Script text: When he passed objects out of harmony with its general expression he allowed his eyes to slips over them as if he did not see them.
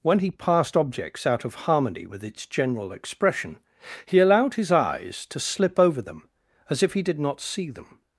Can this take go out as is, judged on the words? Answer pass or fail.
fail